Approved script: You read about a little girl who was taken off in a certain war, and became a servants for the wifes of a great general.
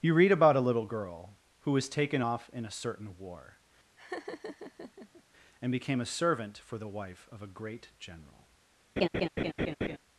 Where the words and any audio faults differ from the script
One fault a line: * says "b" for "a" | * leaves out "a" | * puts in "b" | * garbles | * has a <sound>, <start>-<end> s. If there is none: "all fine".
* has a laugh, 4.0-5.2 s
* says "servant" for "servants"
* says "wife" for "wifes"
* has a laugh, 9.0-10.0 s